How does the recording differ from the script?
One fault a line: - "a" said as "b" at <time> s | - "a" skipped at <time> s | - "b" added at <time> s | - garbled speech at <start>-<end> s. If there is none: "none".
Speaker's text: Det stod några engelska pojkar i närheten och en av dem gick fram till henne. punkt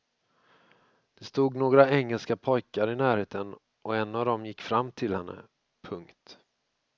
none